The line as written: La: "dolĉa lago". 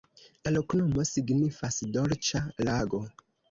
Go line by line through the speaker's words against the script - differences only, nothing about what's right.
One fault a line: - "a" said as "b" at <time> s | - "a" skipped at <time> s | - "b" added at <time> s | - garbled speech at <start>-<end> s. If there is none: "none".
- "loknomo signifas" added at 0.5 s